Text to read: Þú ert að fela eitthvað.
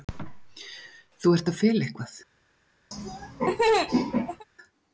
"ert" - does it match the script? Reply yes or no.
yes